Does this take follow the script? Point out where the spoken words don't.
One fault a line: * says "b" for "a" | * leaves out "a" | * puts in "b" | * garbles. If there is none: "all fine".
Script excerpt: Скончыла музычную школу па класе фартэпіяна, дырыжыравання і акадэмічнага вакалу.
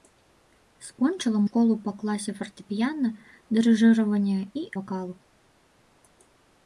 * leaves out "музычную"
* leaves out "акадэмічнага"